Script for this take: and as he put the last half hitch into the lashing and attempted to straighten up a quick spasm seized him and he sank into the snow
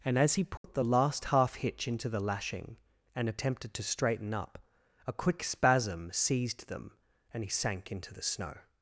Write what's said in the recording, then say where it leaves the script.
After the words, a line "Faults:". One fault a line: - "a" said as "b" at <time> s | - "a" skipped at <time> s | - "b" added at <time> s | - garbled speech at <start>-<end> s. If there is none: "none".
and as he put the last half hitch into the lashing and attempted to straighten up a quick spasm seized them and he sank into the snow
Faults:
- "him" said as "them" at 6.7 s